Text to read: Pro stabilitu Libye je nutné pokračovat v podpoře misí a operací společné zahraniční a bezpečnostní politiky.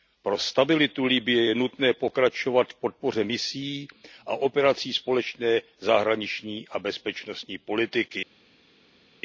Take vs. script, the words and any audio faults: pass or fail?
pass